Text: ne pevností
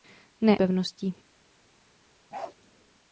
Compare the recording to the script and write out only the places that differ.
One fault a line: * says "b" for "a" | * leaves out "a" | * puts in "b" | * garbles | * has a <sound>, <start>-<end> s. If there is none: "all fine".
* has a bark, 2.3-2.6 s